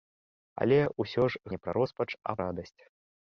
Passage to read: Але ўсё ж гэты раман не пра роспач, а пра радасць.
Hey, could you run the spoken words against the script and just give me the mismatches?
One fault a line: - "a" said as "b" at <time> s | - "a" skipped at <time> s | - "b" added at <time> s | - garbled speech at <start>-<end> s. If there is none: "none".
- "гэты раман" skipped at 1.4 s
- "пра" skipped at 2.4 s